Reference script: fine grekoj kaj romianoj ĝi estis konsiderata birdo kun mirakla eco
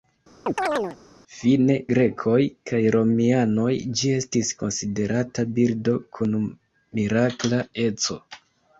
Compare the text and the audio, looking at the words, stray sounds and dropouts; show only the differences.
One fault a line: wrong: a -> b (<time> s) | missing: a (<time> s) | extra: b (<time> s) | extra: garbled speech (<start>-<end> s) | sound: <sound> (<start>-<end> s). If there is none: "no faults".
sound: chirp (0.5-1.0 s)